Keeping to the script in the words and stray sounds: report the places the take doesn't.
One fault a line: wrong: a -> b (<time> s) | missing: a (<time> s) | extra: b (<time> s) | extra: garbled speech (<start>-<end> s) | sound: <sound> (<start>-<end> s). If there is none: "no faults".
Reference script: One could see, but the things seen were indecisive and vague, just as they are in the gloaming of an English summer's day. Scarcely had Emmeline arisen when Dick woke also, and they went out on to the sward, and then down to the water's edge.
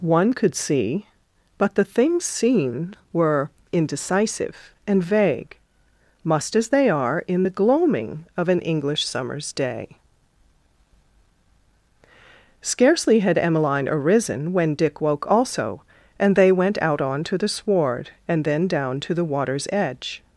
wrong: just -> must (6.2 s)